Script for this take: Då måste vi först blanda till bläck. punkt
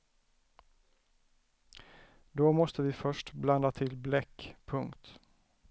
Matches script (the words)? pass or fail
pass